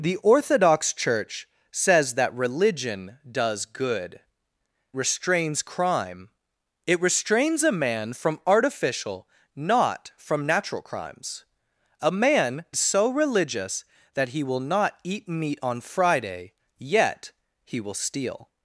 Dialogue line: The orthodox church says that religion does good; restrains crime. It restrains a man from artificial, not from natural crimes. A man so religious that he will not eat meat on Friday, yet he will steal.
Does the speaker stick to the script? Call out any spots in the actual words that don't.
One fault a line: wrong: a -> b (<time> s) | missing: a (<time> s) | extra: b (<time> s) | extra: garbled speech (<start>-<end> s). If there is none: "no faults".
no faults